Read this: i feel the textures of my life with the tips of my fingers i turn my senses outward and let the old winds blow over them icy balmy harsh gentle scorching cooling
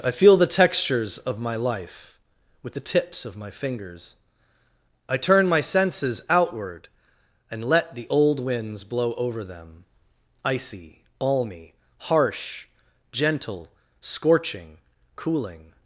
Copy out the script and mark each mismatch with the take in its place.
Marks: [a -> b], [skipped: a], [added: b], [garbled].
i feel the textures of my life with the tips of my fingers i turn my senses outward and let the old winds blow over them icy balmy harsh gentle scorching cooling